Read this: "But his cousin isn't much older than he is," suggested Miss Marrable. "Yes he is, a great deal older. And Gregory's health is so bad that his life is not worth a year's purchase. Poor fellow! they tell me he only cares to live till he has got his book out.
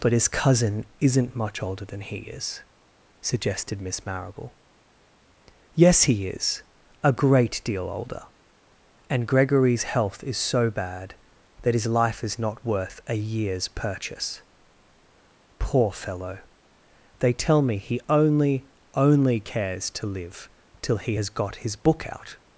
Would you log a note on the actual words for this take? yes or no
yes